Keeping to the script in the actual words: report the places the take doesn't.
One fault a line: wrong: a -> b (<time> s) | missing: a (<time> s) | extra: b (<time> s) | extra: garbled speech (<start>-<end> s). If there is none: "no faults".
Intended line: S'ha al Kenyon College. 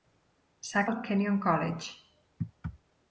no faults